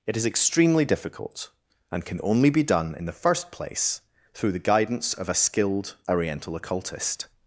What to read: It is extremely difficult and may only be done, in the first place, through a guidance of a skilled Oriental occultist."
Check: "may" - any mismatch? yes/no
yes